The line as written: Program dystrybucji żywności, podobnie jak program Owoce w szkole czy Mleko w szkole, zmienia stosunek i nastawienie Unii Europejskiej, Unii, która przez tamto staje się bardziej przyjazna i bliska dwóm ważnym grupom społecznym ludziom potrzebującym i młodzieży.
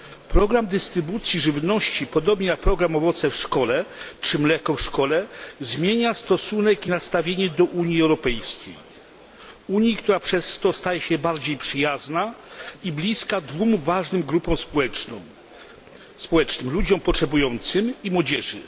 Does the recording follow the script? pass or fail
fail